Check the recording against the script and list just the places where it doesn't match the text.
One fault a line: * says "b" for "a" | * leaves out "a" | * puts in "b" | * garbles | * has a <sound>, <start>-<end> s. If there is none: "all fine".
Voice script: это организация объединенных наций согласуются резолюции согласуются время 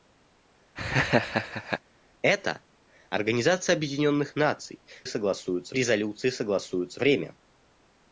* has a laugh, 0.8-1.8 s